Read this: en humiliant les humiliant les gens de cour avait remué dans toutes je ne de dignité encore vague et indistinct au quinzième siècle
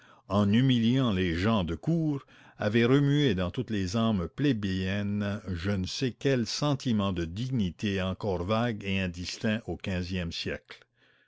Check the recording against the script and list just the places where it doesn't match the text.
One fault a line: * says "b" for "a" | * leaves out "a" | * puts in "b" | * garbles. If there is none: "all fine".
* leaves out "humiliant les"
* puts in "les âmes plébéiennes"
* puts in "sais quel sentiment"